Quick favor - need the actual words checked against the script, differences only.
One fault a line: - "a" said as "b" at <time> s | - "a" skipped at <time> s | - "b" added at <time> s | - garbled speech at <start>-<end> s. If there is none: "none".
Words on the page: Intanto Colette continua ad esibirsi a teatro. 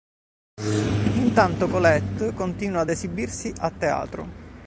none